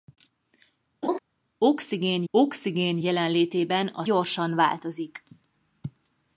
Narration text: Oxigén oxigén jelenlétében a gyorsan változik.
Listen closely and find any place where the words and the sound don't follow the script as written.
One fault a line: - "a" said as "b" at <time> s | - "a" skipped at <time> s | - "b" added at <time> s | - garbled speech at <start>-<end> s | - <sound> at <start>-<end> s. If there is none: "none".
- laugh at 1.0-1.2 s